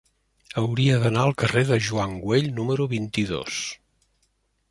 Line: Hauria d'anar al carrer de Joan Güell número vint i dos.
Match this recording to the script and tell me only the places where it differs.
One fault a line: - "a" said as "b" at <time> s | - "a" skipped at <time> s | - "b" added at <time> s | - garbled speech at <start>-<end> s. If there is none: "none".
none